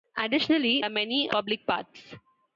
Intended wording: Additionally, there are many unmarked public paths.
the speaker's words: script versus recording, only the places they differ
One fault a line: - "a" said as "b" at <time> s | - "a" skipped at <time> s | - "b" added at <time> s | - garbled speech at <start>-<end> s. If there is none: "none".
- "there" skipped at 0.8 s
- "unmarked" skipped at 1.3 s